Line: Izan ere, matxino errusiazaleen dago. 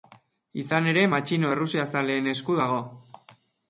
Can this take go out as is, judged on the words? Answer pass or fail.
fail